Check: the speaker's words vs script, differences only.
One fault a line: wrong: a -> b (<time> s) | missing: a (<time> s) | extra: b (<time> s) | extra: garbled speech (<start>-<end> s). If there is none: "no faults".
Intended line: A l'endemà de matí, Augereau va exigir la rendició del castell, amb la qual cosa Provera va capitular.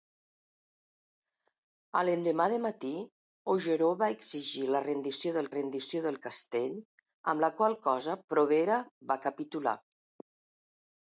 extra: rendició del (5.5 s)